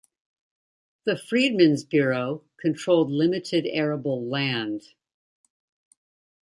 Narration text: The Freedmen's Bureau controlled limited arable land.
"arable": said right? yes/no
yes